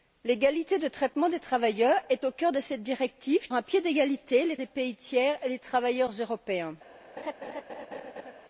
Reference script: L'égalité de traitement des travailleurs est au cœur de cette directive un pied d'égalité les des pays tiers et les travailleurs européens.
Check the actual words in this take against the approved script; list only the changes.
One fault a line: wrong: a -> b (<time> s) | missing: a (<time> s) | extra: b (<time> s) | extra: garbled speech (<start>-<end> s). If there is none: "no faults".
no faults